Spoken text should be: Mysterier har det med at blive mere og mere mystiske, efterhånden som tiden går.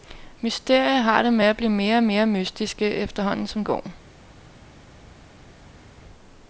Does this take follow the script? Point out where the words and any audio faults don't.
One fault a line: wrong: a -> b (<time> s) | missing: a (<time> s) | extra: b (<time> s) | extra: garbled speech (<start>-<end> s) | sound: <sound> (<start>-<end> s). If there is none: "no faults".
missing: tiden (3.7 s)